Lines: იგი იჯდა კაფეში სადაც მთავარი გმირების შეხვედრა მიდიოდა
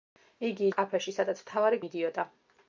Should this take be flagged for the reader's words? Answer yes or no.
yes